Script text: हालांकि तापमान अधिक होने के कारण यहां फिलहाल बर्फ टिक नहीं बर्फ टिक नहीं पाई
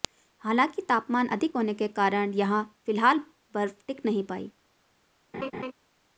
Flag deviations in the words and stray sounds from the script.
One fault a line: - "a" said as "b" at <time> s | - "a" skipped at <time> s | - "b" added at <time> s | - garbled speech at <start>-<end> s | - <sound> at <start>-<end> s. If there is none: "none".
- "बर्फ टिक नहीं" skipped at 4.2 s
- laugh at 5.3-5.7 s